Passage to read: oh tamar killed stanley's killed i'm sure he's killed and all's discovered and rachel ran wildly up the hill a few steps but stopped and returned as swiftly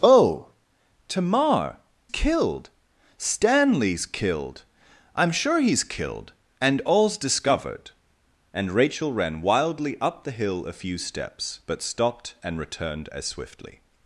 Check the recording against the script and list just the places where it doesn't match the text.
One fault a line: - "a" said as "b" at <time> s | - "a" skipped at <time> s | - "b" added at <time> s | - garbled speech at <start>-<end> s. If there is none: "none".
none